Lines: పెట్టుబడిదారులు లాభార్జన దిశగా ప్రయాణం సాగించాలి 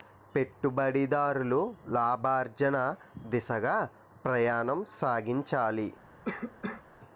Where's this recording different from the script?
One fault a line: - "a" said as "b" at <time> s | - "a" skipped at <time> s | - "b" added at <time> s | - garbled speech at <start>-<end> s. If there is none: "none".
none